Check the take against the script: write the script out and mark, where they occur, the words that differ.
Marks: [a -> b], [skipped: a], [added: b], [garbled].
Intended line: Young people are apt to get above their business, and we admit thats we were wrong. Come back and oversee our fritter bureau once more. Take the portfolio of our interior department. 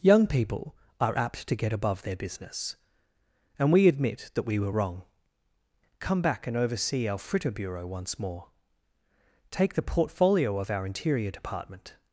Young people are apt to get above their business, and we admit [thats -> that] we were wrong. Come back and oversee our fritter bureau once more. Take the portfolio of our interior department.